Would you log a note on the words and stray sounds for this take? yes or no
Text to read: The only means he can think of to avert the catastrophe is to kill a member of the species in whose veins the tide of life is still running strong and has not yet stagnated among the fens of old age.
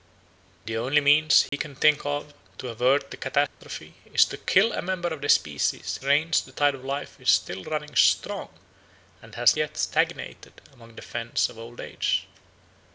yes